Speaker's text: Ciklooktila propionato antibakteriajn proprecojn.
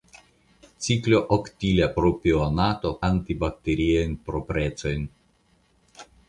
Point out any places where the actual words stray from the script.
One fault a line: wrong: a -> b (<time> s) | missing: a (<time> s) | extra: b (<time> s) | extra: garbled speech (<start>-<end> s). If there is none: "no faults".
no faults